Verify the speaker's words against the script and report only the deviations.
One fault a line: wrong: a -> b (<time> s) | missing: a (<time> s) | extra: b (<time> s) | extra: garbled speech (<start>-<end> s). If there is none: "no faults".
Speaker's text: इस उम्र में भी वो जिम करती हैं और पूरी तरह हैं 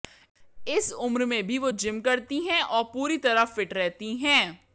extra: फिट रहती (3.5 s)